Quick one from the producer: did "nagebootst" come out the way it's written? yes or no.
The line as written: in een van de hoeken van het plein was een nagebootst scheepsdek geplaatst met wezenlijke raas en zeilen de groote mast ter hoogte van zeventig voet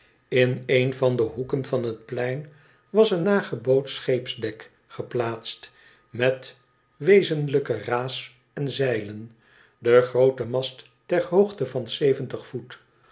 yes